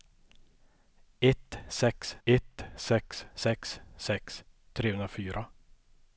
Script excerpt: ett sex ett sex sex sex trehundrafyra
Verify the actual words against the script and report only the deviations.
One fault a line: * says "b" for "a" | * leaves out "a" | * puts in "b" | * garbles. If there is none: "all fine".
all fine